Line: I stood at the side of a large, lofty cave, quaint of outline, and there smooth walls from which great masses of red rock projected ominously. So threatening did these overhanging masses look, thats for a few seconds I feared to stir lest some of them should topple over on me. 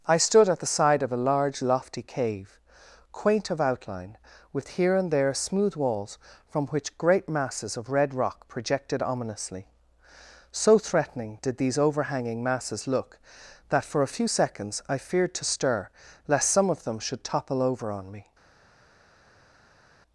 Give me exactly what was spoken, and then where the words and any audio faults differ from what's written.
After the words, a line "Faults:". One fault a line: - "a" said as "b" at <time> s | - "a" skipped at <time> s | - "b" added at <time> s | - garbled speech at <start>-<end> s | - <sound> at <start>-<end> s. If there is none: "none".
I stood at the side of a large, lofty cave, quaint of outline, with here and there smooth walls from which great masses of red rock projected ominously. So threatening did these overhanging masses look, that for a few seconds I feared to stir lest some of them should topple over on me.
Faults:
- "with here" added at 4.5 s
- "thats" said as "that" at 13.7 s